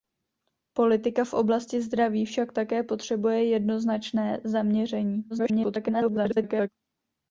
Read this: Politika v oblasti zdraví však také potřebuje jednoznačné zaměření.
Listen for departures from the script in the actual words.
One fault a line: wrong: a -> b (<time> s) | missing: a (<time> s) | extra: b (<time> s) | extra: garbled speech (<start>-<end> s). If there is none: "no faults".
extra: garbled speech (5.3-6.7 s)